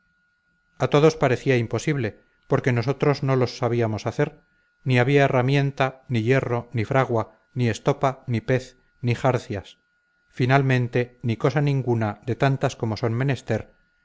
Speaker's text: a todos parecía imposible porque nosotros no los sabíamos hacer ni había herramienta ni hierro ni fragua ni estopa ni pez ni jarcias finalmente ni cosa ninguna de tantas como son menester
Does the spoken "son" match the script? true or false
true